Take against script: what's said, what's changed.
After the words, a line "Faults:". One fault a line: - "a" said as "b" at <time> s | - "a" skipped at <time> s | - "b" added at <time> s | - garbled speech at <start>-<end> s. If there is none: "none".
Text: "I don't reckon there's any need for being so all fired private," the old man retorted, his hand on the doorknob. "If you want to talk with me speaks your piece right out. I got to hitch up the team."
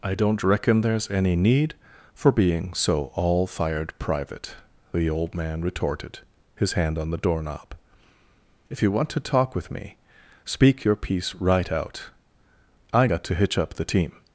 "I don't reckon there's any need for being so all fired private," the old man retorted, his hand on the doorknob. "If you want to talk with me speak your piece right out. I got to hitch up the team."
Faults:
- "speaks" said as "speak" at 10.4 s